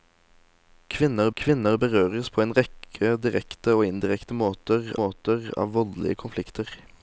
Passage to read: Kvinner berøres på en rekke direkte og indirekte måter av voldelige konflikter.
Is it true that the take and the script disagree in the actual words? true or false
true